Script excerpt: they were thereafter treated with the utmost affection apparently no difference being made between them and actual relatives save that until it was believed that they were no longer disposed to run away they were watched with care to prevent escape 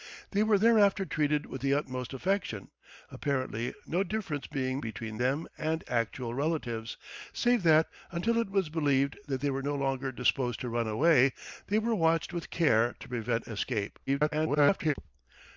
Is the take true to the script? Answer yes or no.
no